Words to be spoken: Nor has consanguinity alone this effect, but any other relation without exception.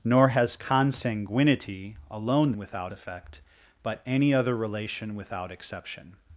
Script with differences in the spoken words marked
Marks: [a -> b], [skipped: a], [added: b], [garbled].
Nor has consanguinity alone [this -> without] effect, but any other relation without exception.